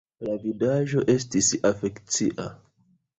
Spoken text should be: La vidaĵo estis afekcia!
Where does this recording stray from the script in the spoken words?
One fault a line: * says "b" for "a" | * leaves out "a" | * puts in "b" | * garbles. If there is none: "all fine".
all fine